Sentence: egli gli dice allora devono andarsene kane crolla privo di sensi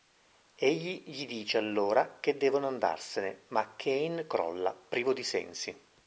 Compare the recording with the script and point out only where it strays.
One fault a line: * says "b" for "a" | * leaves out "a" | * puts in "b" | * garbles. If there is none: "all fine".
* puts in "che"
* puts in "ma"